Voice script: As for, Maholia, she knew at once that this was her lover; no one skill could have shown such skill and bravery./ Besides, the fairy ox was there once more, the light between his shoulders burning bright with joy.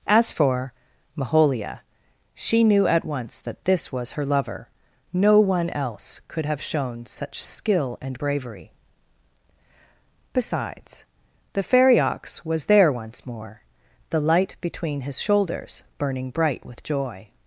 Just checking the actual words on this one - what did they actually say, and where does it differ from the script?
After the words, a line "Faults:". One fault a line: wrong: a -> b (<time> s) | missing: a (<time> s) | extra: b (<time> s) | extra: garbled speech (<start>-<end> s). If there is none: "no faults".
As for, Maholia, she knew at once that this was her lover; no one else could have shown such skill and bravery./ Besides, the fairy ox was there once more, the light between his shoulders burning bright with joy.
Faults:
wrong: skill -> else (5.7 s)